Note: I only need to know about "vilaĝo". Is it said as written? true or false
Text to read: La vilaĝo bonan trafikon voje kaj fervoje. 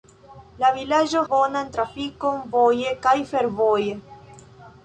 true